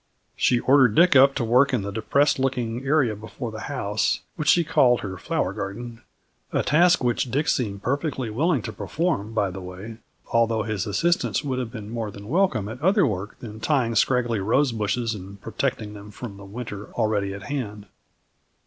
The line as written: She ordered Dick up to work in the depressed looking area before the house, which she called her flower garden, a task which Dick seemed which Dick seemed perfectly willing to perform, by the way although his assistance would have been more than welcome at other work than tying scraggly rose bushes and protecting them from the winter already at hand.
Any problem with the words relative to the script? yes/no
yes